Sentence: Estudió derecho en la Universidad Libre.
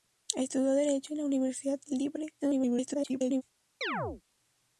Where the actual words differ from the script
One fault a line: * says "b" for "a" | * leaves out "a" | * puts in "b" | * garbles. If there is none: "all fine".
* garbles